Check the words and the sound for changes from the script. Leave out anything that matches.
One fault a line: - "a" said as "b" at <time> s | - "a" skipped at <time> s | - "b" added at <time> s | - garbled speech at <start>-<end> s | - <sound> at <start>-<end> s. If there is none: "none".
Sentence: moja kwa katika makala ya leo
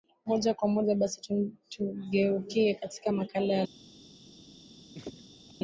- "moja basi tugeukie" added at 0.7 s
- laugh at 4.9-5.5 s